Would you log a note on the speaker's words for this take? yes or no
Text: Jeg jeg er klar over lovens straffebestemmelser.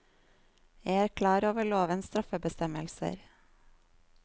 yes